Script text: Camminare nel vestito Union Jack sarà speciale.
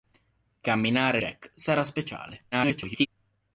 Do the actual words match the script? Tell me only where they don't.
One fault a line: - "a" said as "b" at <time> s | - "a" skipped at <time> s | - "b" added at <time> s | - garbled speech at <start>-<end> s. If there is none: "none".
- "nel vestito Union" skipped at 1.2 s
- garbled speech at 2.5-3.1 s